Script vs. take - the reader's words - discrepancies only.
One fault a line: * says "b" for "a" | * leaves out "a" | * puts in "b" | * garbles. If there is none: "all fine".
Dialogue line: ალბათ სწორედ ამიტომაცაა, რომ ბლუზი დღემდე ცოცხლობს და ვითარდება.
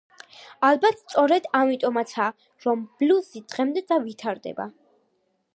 * leaves out "ცოცხლობს"